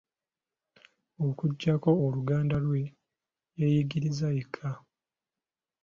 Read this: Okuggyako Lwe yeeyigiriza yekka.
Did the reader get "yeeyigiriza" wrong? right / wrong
right